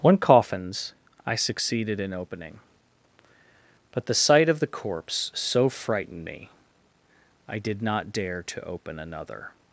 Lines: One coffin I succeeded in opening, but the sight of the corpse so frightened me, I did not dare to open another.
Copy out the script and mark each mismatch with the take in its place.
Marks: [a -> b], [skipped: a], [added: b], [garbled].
One [coffin -> coffins] I succeeded in opening, but the sight of the corpse so frightened me, I did not dare to open another.